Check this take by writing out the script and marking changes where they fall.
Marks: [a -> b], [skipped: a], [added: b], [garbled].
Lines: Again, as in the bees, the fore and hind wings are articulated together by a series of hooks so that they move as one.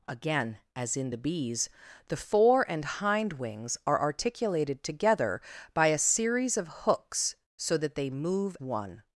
Again, as in the bees, the fore and hind wings are articulated together by a series of hooks so that they move [skipped: as] one.